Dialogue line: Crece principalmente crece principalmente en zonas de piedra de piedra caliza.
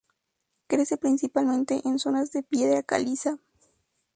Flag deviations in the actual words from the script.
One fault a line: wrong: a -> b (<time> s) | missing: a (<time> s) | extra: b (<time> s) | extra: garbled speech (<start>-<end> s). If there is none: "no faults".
missing: crece principalmente (1.8 s)
missing: de piedra (2.8 s)